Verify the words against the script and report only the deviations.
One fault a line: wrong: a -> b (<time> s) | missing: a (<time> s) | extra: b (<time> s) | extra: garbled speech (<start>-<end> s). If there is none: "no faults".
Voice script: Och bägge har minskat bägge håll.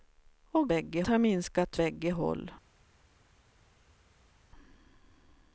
no faults